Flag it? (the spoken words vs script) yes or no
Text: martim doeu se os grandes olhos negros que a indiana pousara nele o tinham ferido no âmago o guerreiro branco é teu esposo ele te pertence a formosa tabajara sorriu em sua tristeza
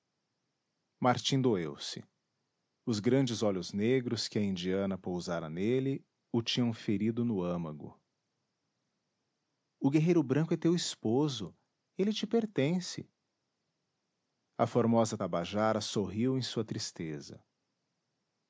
no